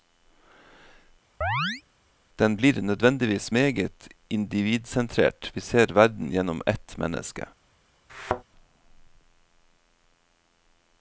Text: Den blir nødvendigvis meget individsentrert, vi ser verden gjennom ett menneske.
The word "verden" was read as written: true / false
true